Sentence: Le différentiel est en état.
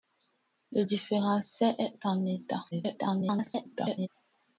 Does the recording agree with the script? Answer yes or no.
no